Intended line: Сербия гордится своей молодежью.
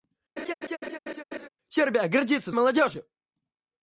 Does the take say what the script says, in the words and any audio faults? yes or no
no